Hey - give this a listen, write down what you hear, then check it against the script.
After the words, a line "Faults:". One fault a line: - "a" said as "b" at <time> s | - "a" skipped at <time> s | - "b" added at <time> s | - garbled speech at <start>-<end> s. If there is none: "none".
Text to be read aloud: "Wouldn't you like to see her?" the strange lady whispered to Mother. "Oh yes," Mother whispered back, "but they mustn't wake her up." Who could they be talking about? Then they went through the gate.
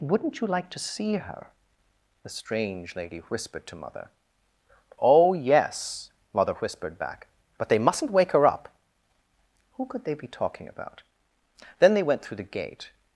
"Wouldn't you like to see her?" the strange lady whispered to Mother. "Oh yes," Mother whispered back, "but they mustn't wake her up." Who could they be talking about? Then they went through the gate.
Faults:
none